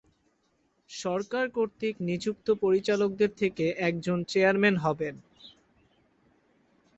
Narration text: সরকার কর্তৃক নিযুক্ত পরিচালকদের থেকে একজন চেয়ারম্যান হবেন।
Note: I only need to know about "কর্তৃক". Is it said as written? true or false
true